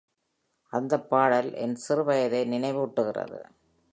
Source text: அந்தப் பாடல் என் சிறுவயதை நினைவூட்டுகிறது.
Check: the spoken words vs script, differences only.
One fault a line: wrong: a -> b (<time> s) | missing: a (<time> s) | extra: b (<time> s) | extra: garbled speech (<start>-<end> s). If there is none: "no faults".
no faults